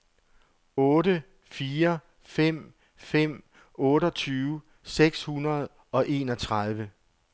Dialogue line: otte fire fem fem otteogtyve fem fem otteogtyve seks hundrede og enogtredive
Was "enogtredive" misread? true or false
false